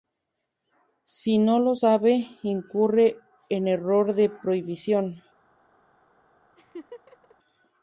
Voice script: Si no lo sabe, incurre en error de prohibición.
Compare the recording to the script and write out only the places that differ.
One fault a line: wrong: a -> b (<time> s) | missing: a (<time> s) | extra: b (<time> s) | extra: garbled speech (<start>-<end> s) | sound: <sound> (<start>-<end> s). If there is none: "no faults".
sound: laugh (6.6-7.4 s)